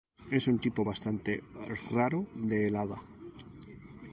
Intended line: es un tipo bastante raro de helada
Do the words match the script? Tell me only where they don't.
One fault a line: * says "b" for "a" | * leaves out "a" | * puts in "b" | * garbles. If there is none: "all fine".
all fine